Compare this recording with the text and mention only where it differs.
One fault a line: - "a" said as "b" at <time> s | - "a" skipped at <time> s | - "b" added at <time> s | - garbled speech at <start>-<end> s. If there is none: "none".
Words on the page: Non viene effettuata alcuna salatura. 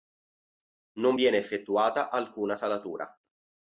none